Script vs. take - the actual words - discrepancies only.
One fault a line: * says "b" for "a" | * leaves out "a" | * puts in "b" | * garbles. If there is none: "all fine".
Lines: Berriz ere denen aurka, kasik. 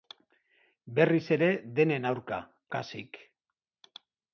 all fine